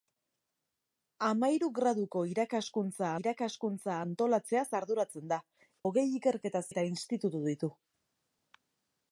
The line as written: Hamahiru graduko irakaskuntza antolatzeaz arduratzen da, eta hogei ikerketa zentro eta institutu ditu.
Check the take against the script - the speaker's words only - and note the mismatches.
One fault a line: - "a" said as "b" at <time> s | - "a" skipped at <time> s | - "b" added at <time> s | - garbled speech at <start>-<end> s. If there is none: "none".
- "irakaskuntza" added at 3.2 s
- "eta" skipped at 5.4 s
- "zentro" skipped at 6.6 s